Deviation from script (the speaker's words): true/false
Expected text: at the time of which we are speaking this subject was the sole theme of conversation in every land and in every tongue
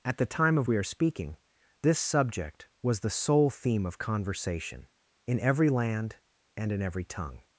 true